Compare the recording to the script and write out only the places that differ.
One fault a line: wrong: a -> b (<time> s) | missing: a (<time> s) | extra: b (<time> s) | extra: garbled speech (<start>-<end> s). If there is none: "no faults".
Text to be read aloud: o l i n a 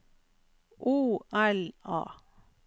missing: i n (1.7 s)